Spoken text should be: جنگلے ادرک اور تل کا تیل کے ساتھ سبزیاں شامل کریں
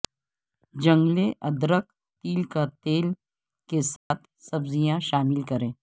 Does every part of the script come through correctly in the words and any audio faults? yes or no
no